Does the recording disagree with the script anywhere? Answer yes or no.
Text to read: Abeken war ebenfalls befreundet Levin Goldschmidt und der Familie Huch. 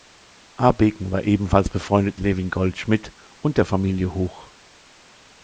no